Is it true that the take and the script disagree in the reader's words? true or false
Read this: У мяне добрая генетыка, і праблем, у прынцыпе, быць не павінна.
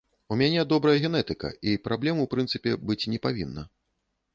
false